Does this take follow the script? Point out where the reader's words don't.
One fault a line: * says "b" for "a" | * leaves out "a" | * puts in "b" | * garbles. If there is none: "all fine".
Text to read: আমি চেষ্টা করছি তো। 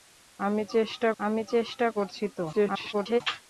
* puts in "আমি চেষ্টা"
* garbles